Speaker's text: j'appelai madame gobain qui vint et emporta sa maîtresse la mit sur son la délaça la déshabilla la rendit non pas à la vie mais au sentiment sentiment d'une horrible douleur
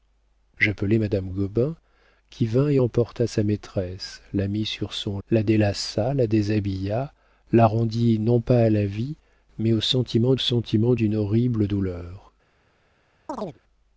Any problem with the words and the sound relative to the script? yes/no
yes